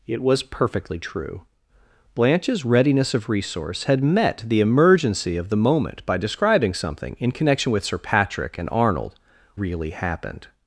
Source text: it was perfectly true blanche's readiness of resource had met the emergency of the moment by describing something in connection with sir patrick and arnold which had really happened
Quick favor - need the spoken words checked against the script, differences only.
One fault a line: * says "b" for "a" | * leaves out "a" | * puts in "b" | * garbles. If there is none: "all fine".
* leaves out "which had"